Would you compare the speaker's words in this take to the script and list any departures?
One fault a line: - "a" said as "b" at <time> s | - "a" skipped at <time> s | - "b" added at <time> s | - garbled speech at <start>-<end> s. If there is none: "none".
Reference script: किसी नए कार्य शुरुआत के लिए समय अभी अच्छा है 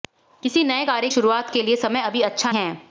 none